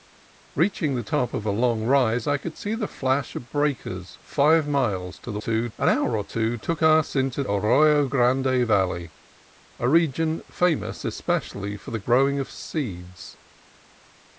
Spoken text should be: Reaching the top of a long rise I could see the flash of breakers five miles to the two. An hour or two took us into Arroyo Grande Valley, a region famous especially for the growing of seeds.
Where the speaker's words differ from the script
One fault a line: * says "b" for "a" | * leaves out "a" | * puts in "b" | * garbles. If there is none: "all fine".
all fine